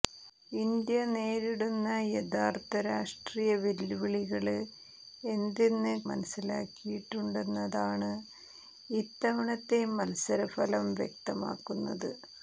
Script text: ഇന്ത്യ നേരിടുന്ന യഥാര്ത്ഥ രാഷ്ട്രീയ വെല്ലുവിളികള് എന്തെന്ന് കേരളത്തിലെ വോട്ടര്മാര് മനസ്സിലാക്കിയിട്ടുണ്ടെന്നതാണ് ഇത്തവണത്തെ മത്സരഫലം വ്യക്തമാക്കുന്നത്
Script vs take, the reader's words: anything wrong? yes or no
yes